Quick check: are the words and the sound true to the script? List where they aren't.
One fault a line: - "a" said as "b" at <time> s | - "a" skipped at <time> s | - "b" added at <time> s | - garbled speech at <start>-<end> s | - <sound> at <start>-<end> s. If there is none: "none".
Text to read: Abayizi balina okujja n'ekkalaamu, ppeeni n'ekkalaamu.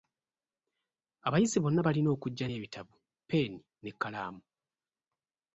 - "bonna" added at 1.6 s
- "n'ekkalaamu" said as "n'ebitabo" at 2.4 s